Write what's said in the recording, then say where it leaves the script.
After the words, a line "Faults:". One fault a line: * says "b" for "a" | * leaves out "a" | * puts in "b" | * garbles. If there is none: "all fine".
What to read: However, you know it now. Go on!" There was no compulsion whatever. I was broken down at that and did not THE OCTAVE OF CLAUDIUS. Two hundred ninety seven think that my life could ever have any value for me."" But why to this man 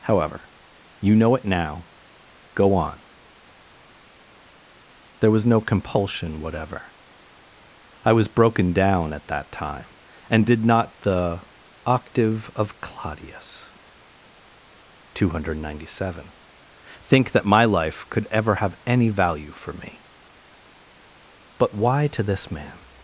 However, you know it now. Go on!" There was no compulsion whatever. I was broken down at that time, and did not THE OCTAVE OF CLAUDIUS. Two hundred ninety seven think that my life could ever have any value for me."" But why to this man
Faults:
* puts in "time"